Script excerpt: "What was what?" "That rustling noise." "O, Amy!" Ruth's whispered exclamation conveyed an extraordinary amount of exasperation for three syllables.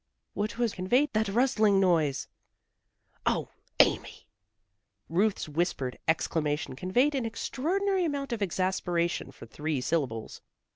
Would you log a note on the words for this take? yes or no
yes